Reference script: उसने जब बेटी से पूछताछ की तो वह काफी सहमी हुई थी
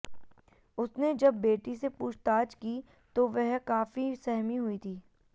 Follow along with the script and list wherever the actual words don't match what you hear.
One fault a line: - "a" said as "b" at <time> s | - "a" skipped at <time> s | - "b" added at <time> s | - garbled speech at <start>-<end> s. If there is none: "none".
none